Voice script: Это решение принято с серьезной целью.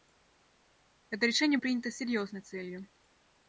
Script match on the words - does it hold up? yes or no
yes